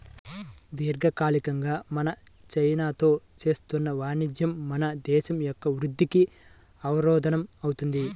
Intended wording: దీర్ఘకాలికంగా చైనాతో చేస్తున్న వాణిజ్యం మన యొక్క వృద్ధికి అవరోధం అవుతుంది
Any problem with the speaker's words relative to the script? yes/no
yes